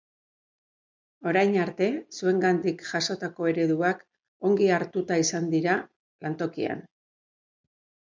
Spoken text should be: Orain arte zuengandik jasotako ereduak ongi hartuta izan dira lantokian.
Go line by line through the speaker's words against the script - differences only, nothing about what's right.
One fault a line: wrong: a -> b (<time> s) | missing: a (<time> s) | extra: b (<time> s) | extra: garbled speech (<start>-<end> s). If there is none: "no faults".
no faults